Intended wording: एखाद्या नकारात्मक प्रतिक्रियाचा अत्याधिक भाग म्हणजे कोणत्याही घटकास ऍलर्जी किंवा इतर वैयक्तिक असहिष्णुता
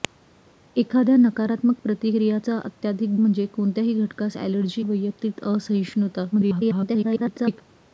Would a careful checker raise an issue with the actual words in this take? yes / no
yes